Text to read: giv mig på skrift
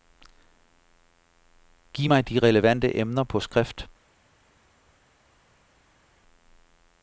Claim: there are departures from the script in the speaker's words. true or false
true